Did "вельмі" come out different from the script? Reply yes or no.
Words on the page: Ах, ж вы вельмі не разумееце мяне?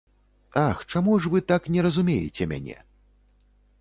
yes